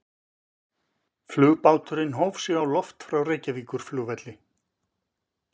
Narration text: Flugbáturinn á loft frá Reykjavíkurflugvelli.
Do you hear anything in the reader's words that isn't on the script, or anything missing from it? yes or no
yes